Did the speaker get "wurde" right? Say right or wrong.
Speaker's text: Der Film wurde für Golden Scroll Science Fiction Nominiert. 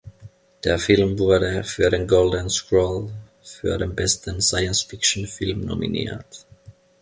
right